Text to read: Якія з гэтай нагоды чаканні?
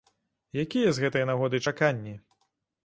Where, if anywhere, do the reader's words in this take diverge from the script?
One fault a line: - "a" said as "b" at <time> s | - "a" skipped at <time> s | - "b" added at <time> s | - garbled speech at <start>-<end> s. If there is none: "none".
none